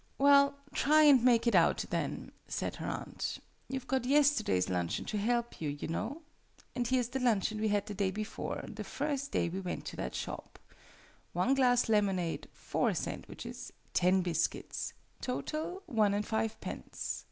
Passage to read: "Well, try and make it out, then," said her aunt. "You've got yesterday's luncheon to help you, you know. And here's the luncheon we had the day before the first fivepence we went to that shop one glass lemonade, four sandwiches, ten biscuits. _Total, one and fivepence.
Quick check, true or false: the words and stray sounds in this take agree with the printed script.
false